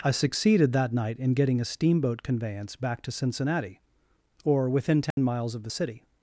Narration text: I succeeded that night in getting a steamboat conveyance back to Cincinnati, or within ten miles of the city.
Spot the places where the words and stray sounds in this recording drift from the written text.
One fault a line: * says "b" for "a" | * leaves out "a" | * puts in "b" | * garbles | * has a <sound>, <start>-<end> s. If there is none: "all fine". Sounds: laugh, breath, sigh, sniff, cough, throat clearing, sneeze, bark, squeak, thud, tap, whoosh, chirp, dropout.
* has a dropout, 5.1-5.2 s